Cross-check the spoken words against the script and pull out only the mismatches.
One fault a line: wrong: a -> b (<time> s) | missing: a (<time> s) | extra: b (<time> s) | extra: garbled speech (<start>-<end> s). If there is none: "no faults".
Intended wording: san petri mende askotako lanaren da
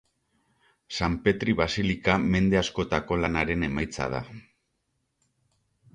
extra: basilika (1.6 s)
extra: emaitza (3.7 s)